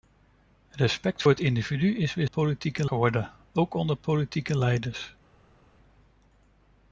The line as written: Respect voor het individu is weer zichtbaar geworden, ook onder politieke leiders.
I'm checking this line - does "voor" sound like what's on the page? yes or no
no